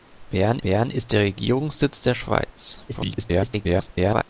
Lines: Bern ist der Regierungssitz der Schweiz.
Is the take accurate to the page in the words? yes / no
no